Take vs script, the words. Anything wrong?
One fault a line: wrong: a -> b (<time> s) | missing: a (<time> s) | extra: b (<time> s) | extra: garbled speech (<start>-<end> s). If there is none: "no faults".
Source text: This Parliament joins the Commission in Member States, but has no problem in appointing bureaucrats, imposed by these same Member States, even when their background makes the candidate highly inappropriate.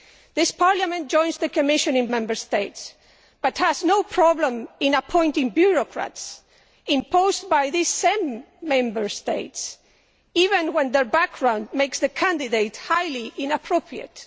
no faults